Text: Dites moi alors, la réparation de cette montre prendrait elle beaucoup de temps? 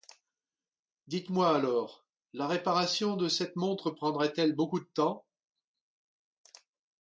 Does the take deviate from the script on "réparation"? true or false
false